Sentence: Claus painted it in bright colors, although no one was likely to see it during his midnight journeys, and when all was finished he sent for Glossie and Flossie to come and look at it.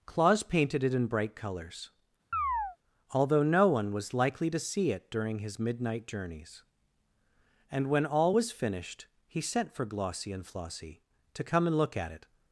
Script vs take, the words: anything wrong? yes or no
no